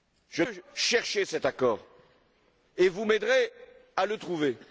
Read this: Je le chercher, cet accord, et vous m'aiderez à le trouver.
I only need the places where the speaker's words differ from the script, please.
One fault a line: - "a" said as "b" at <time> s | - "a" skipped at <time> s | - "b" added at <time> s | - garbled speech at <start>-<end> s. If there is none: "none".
none